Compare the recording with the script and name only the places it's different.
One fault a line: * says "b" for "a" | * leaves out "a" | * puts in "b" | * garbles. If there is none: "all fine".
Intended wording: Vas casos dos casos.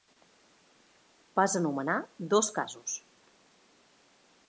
* says "anomenar" for "casos"